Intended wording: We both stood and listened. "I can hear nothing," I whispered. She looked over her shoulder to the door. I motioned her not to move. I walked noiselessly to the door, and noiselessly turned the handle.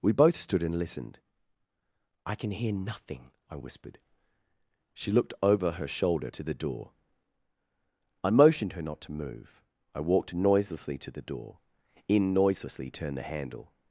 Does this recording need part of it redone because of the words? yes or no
yes